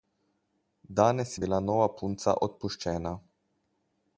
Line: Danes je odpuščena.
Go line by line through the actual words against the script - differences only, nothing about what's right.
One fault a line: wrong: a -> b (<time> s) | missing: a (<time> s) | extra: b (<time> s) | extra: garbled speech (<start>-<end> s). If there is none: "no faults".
extra: bila nova punca (1.4 s)